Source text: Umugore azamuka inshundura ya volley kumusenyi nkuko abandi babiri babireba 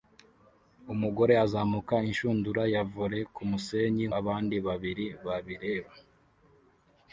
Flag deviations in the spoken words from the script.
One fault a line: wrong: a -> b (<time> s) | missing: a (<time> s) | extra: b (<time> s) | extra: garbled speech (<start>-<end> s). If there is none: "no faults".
missing: nkuko (4.0 s)